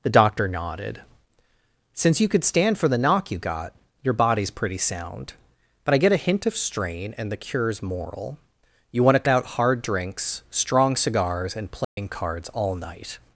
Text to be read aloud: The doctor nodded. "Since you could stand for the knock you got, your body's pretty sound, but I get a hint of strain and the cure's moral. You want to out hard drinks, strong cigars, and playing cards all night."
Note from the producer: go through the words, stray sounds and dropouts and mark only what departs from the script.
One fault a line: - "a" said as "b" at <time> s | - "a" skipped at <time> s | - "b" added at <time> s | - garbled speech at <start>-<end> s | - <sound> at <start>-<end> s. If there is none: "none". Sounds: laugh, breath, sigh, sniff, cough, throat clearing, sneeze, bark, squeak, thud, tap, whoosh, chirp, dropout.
- dropout at 11.8-12.0 s